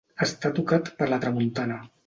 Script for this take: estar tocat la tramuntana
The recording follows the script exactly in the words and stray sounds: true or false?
false